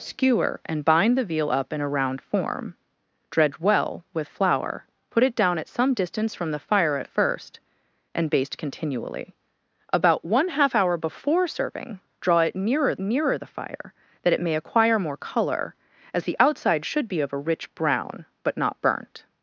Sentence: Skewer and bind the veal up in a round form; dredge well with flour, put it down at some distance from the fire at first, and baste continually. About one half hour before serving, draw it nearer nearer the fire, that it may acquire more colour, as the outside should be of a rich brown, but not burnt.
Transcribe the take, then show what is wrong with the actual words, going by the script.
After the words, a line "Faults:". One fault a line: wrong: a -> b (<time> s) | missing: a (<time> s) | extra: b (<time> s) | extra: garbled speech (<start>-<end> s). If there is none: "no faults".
Skewer and bind the veal up in a round form; dredge well with flour, put it down at some distance from the fire at first, and baste continually. About one half hour before serving, draw it nearer nearer the fire, that it may acquire more colour, as the outside should be of a rich brown, but not burnt.
Faults:
no faults